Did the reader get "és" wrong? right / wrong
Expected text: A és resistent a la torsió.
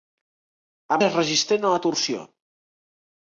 right